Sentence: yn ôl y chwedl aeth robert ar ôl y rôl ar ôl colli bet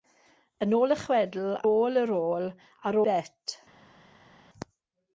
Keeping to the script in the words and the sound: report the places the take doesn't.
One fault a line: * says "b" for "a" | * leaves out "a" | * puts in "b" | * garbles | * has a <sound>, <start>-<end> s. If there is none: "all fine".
* leaves out "aeth robert ar"
* leaves out "ôl colli"